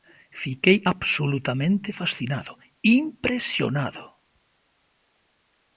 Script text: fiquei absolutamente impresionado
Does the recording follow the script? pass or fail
fail